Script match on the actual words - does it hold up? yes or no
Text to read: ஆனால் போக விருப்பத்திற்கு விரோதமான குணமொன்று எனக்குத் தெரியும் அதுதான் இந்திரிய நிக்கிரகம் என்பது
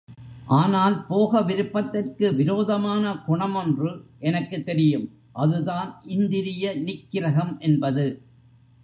yes